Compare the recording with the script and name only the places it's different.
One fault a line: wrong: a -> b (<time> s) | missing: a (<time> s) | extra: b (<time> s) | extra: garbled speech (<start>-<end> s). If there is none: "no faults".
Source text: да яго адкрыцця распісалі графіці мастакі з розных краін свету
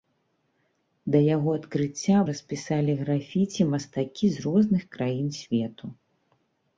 no faults